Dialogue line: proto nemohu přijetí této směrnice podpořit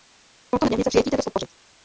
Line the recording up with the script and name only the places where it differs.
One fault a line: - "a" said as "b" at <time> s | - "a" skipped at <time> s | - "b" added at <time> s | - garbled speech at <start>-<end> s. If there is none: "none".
- "nemohu" said as "směrnice" at 0.6 s
- "směrnice" skipped at 1.2 s